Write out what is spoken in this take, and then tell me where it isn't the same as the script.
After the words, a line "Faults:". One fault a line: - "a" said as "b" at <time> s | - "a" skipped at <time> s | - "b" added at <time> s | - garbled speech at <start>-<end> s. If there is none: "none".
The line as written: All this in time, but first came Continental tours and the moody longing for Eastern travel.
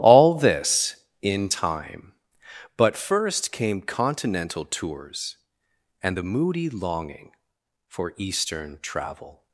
All this in time, but first came Continental tours and the moody longing for Eastern travel.
Faults:
none